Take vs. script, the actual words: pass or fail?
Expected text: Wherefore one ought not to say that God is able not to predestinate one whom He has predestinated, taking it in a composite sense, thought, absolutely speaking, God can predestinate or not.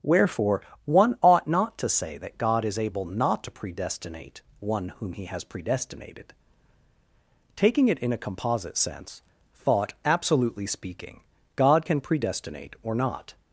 pass